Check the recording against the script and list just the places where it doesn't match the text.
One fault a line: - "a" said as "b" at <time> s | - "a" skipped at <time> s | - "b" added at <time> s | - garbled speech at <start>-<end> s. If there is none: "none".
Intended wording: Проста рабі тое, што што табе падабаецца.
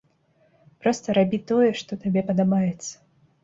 - "што" skipped at 2.0 s